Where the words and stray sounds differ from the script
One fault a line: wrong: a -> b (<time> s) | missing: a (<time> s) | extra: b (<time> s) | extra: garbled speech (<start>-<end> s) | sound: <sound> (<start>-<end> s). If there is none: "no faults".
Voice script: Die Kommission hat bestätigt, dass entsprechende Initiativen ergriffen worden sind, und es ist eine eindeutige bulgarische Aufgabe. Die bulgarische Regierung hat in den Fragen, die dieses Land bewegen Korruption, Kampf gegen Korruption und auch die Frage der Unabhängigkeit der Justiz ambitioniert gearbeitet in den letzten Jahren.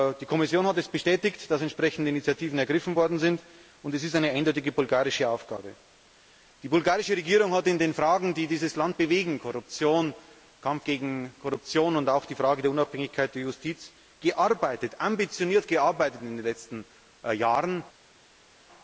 no faults